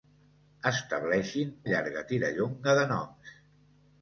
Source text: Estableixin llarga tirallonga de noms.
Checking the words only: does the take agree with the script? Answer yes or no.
yes